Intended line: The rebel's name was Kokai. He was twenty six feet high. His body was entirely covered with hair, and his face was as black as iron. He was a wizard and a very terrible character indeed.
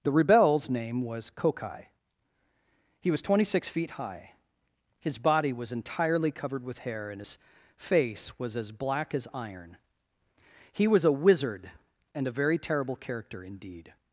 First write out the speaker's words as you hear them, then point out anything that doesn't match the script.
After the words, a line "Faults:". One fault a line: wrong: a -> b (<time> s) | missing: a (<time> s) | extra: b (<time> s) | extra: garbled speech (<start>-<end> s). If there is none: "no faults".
The rebel's name was Kokai. He was twenty six feet high. His body was entirely covered with hair, and his face was as black as iron. He was a wizard and a very terrible character indeed.
Faults:
no faults